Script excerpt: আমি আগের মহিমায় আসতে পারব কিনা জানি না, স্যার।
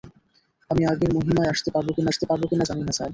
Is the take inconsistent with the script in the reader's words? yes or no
yes